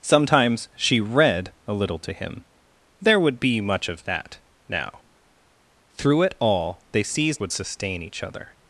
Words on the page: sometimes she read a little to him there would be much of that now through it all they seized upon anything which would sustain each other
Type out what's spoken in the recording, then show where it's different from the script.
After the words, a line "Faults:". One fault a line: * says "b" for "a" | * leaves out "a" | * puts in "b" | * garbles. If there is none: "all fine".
sometimes she read a little to him there would be much of that now through it all they seized would sustain each other
Faults:
* leaves out "upon anything which"